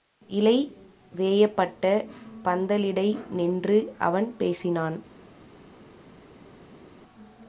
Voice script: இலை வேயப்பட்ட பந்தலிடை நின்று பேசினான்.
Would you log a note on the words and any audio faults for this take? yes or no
yes